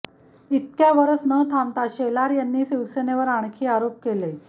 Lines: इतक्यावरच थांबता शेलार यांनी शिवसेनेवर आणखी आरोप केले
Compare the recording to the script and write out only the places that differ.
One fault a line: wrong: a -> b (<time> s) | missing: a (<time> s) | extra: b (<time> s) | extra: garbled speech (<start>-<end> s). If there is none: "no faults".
extra: न (1.2 s)